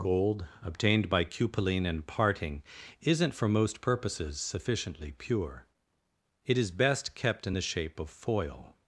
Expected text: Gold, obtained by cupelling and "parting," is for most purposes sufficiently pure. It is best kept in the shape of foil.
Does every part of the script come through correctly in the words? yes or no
no